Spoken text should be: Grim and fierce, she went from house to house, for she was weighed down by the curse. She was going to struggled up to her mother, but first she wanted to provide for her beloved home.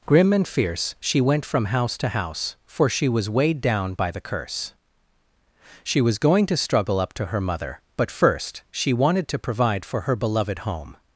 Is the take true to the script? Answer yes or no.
no